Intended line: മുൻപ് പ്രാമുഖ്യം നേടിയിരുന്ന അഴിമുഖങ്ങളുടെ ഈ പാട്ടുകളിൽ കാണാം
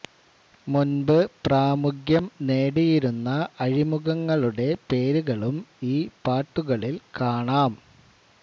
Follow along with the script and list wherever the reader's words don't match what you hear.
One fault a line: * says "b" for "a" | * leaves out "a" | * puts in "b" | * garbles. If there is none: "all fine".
* puts in "പേരുകളും"